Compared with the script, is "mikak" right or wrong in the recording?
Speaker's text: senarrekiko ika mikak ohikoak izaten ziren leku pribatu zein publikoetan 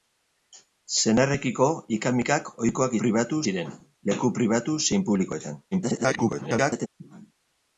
right